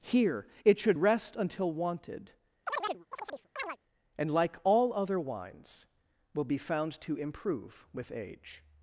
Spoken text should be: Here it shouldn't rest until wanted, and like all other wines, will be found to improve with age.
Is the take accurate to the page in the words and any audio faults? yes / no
no